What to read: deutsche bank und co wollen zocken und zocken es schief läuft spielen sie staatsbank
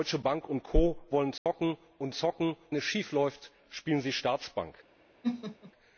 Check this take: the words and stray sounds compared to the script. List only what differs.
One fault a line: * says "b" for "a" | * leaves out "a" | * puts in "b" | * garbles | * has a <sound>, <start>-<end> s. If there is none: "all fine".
* has a dropout, 1.4-1.5 s
* has a laugh, 5.2-5.7 s